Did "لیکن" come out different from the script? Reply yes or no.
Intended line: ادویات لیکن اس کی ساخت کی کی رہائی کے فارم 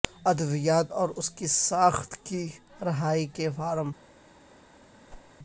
yes